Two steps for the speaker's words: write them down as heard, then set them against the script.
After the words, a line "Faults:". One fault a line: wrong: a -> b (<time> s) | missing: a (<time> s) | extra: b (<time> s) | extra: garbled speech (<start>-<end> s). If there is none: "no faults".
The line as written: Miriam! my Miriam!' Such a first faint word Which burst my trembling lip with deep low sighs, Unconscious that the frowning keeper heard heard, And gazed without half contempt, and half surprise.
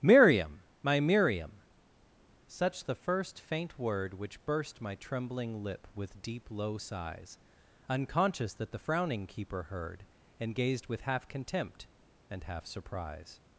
Miriam! my Miriam!' Such the first faint word Which burst my trembling lip with deep low sighs, Unconscious that the frowning keeper heard, And gazed with half contempt, and half surprise.
Faults:
wrong: a -> the (2.9 s)
missing: heard (10.0 s)
wrong: without -> with (10.9 s)